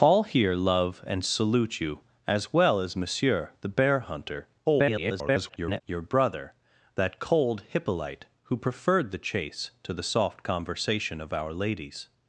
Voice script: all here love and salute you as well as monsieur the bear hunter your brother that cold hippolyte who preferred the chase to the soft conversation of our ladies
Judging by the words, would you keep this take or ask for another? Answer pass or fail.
fail